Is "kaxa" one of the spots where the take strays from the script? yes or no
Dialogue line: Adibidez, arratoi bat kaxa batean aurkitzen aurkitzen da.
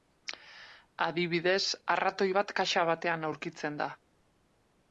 no